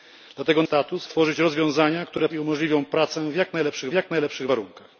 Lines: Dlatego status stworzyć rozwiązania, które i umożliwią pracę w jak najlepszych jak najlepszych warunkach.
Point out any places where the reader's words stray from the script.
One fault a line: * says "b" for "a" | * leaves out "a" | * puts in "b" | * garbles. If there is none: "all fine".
all fine